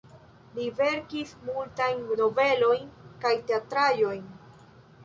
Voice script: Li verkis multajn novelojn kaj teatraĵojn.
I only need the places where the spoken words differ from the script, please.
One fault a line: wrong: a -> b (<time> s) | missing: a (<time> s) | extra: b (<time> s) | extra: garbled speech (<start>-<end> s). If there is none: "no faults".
no faults